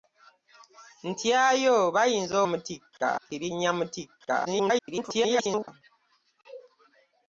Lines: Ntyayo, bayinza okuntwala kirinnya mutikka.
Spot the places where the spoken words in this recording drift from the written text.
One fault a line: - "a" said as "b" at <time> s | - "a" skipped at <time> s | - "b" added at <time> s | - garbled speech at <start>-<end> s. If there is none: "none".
- "okuntwala" said as "mutikka" at 2.5 s
- garbled speech at 4.4-5.7 s